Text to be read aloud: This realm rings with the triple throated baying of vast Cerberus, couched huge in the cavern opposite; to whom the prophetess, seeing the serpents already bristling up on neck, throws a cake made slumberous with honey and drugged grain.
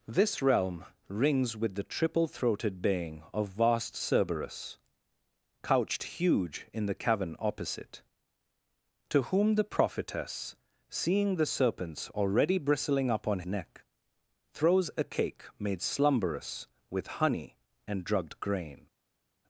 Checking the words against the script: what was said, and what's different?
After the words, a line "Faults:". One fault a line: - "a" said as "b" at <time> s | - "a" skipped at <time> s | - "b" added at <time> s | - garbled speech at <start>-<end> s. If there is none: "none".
This realm rings with the triple throated baying of vast Cerberus, couched huge in the cavern opposite; to whom the prophetess, seeing the serpents already bristling up on neck, throws a cake made slumberous with honey and drugged grain.
Faults:
none